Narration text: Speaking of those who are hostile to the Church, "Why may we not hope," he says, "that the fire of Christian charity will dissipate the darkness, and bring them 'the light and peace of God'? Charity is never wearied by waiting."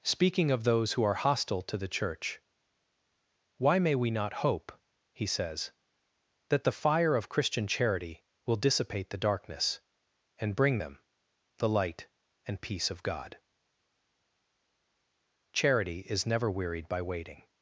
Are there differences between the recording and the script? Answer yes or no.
no